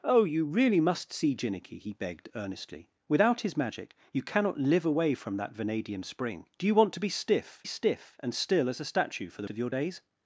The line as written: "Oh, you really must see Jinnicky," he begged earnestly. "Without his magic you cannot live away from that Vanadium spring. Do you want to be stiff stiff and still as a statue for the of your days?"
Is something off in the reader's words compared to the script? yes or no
no